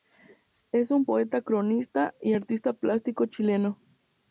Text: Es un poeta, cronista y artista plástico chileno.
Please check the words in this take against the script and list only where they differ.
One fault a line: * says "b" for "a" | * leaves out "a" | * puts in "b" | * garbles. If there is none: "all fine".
all fine